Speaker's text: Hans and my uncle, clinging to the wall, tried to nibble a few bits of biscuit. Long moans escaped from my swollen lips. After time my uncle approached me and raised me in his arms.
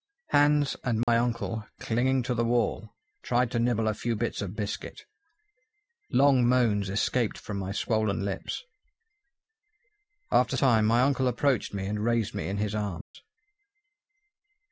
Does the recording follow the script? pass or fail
pass